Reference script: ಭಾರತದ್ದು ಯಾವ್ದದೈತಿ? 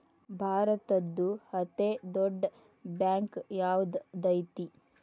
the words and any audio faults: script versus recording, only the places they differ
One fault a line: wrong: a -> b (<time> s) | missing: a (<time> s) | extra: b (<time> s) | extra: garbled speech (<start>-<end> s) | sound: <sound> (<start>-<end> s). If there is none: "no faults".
extra: ಅತೇ ದೊಡ್ಡ್ ಬ್ಯಾಂಕ್ (1.5 s)